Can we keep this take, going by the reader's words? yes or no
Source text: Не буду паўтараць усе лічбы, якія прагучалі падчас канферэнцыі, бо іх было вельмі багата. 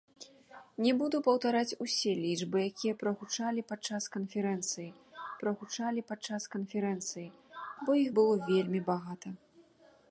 no